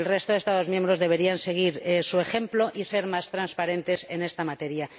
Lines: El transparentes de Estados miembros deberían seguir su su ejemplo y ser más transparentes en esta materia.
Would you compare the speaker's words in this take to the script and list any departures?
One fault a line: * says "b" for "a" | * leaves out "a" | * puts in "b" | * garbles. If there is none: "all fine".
* says "resto" for "transparentes"
* leaves out "su"